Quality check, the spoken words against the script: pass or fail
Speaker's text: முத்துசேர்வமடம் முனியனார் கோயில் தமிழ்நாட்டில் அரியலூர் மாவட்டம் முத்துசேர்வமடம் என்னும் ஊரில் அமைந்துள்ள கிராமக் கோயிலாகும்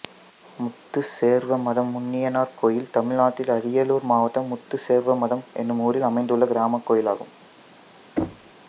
pass